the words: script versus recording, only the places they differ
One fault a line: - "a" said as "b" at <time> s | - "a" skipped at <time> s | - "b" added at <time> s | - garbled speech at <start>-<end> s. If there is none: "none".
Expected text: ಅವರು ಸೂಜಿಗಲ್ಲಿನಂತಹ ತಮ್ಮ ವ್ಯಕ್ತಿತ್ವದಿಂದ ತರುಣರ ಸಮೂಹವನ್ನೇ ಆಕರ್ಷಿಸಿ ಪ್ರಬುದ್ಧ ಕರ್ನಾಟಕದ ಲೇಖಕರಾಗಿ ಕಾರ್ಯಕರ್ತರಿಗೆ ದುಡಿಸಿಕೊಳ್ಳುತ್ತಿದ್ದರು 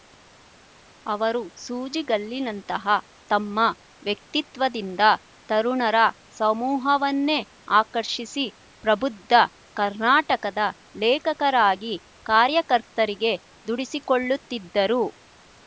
none